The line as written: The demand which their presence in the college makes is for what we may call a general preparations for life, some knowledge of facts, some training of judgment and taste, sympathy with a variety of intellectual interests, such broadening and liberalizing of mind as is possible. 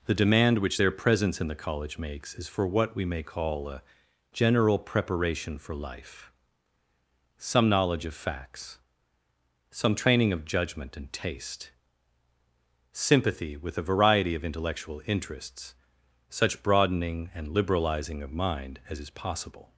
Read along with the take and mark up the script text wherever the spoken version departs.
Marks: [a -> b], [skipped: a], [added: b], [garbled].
The demand which their presence in the college makes is for what we may call a general [preparations -> preparation] for life, some knowledge of facts, some training of judgment and taste, sympathy with a variety of intellectual interests, such broadening and liberalizing of mind as is possible.